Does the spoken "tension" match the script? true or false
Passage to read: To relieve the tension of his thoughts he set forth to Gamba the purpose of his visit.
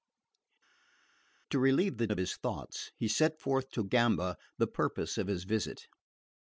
false